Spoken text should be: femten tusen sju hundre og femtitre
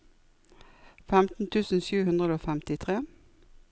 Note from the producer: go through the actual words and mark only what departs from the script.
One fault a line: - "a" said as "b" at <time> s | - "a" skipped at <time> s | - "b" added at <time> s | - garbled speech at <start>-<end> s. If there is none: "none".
none